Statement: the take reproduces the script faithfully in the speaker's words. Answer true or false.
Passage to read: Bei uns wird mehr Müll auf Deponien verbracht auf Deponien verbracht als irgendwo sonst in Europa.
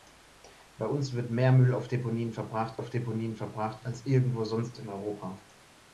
true